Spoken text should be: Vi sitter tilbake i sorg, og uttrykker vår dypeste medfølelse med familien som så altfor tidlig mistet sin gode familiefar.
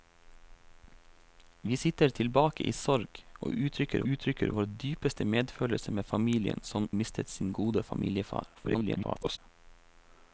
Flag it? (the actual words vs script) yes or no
yes